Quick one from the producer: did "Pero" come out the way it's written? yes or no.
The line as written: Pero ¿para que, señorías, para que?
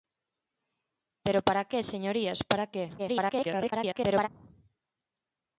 yes